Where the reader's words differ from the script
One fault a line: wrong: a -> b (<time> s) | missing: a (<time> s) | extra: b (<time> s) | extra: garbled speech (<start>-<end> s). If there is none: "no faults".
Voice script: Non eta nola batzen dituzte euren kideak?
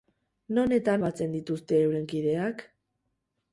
missing: nola (0.9 s)